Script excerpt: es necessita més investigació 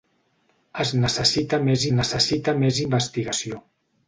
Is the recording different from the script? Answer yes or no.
yes